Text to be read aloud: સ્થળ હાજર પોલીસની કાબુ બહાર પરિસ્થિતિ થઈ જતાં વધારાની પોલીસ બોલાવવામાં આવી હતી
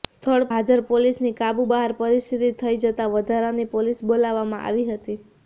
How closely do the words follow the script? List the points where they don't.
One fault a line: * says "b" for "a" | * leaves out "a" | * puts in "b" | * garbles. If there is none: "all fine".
all fine